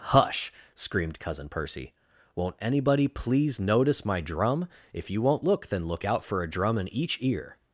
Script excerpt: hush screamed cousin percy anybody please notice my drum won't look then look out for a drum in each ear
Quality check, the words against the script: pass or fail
fail